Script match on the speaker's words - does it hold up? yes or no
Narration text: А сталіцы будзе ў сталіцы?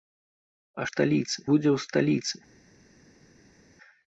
yes